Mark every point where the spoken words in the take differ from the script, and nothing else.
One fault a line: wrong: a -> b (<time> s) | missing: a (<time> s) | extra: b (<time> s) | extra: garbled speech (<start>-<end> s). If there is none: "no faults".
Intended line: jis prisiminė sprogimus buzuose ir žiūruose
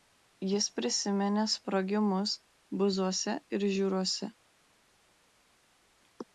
no faults